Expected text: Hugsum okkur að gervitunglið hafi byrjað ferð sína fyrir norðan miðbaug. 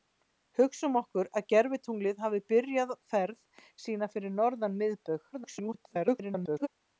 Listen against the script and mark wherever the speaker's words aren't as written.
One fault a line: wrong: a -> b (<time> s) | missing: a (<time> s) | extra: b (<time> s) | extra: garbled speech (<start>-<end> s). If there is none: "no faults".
extra: garbled speech (5.3-6.7 s)